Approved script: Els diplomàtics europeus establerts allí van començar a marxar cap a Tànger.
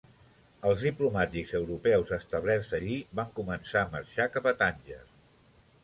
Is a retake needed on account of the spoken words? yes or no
no